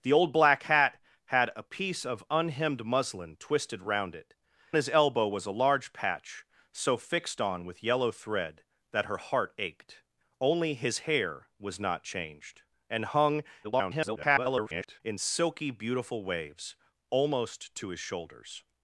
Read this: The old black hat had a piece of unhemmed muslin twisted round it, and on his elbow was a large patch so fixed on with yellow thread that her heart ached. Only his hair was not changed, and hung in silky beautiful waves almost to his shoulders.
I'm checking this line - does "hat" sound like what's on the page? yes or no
yes